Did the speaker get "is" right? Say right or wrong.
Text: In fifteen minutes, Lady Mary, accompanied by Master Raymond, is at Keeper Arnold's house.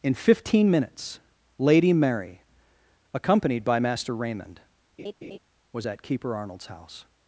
wrong